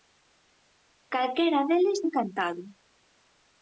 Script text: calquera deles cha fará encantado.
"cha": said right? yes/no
no